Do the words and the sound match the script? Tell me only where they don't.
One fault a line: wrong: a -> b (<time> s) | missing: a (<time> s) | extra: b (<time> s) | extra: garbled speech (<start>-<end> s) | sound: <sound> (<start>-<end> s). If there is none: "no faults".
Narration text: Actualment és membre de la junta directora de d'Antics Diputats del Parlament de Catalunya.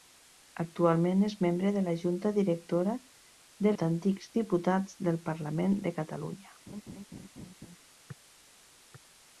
sound: laugh (6.7-7.8 s)